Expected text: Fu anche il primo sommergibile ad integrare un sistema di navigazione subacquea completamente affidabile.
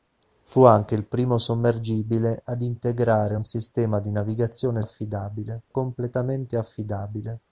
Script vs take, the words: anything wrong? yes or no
yes